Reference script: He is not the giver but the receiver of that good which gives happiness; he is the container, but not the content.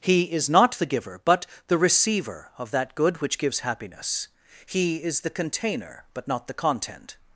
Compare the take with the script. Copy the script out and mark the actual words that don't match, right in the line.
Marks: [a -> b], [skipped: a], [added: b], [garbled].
He is not the giver but the receiver of that good which gives happiness; he is the container, but not the content.